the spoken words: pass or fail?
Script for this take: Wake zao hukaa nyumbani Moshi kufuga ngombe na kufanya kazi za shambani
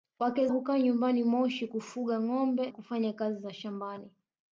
fail